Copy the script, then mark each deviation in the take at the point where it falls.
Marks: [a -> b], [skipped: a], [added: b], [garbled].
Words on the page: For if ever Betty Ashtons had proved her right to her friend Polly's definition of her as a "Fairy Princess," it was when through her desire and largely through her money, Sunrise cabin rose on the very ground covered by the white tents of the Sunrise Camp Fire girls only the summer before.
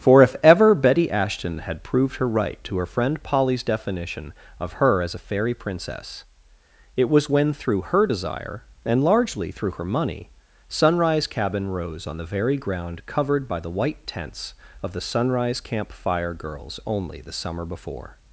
For if ever Betty [Ashtons -> Ashton] had proved her right to her friend Polly's definition of her as a "Fairy Princess," it was when through her desire and largely through her money, Sunrise cabin rose on the very ground covered by the white tents of the Sunrise Camp Fire girls only the summer before.